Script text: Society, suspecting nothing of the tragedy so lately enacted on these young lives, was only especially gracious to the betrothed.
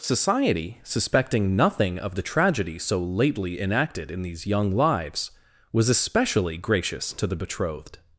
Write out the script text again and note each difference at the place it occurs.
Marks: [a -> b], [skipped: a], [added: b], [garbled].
Society, suspecting nothing of the tragedy so lately enacted [on -> in] these young lives, was [skipped: only] especially gracious to the betrothed.